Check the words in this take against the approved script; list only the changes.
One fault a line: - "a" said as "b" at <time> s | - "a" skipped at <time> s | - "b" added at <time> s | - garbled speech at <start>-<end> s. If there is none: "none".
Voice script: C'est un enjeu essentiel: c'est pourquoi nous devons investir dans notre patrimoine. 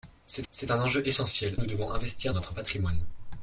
- "c'est" added at 0.5 s
- "c'est pourquoi" skipped at 1.5 s
- "dans" skipped at 2.3 s